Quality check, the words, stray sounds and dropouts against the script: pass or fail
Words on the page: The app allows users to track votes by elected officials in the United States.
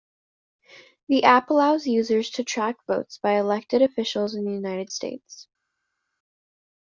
pass